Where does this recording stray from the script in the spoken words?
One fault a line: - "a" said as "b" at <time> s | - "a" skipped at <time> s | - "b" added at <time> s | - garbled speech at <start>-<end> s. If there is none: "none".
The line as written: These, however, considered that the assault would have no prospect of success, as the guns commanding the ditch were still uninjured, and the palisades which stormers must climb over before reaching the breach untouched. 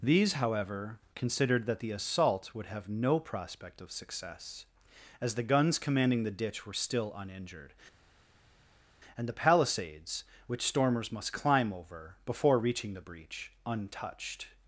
none